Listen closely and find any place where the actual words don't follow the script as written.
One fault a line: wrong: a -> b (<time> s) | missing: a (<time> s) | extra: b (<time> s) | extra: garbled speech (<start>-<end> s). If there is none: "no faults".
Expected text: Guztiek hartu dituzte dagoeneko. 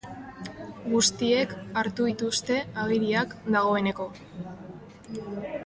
extra: agiriak (2.8 s)